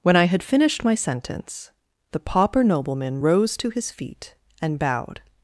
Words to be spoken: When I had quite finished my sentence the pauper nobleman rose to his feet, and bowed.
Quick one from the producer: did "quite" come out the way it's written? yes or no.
no